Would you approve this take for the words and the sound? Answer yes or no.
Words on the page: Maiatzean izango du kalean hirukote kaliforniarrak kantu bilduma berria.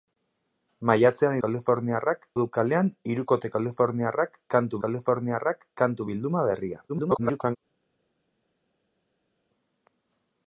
no